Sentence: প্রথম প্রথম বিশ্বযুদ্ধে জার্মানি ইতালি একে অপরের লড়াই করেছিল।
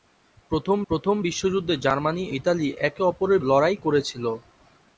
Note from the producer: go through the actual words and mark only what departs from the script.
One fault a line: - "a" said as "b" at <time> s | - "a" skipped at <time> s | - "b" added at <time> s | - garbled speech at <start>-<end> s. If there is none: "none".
none